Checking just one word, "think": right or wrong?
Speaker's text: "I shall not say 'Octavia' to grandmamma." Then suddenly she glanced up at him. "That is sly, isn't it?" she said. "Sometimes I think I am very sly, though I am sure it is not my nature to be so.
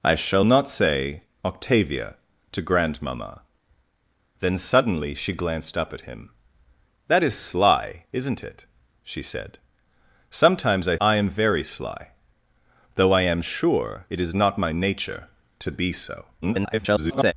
wrong